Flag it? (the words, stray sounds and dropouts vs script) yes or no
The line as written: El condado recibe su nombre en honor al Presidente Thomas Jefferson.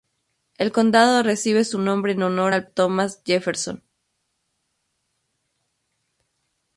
yes